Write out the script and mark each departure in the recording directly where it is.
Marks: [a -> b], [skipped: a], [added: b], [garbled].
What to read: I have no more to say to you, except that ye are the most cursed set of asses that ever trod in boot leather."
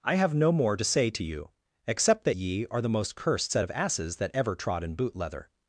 I have no more to say to you, except that ye are the most cursed set of asses that ever trod in boot leather."